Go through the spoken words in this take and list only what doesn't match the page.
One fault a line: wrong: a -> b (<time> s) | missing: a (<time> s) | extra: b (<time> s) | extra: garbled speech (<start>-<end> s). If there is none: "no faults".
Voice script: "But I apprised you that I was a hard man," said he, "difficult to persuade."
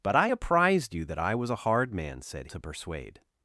missing: he difficult (2.5 s)